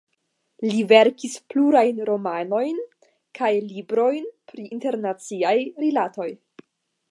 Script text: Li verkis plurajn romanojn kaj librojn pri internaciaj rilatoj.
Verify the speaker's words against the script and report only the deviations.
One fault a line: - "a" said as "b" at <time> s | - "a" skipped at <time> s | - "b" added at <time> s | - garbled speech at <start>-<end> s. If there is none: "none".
none